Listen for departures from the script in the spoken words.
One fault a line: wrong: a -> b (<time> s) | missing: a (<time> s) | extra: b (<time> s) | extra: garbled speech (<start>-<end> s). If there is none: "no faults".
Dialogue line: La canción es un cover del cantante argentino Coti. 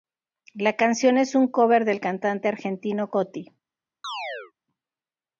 no faults